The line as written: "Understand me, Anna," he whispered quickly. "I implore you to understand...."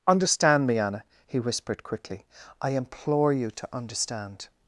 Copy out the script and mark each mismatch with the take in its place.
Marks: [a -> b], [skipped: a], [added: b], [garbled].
"Understand me, Anna," he whispered quickly. "I implore you to understand...."